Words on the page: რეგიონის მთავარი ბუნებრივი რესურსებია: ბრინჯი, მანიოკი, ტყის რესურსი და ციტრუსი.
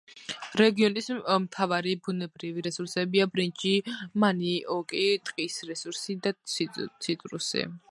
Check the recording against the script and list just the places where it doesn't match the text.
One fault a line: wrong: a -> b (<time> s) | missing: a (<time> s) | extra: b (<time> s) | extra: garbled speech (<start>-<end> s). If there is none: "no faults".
no faults